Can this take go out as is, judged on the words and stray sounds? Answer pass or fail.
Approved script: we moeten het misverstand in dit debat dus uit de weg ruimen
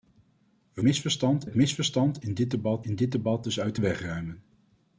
fail